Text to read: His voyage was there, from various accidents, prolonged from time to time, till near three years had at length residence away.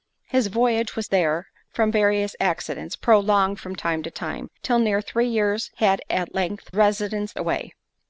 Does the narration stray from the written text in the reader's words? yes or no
no